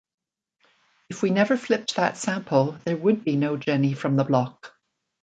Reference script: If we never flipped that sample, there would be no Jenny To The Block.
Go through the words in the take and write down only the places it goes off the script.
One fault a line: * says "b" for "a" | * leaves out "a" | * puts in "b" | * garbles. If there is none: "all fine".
* says "From" for "To"